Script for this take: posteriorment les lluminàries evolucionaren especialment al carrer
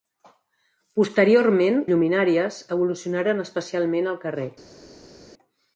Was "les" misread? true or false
true